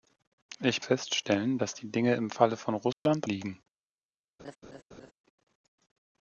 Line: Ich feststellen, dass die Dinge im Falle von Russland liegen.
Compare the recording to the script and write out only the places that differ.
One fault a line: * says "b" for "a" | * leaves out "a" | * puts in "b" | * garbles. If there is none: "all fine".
all fine